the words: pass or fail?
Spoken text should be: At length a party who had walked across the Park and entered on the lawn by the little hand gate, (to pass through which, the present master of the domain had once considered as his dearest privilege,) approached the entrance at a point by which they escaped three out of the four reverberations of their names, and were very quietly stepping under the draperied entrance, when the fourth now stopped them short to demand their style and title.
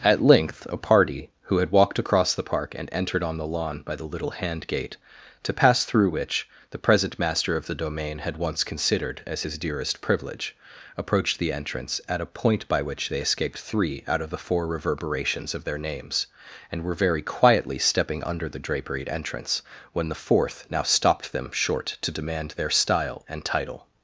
pass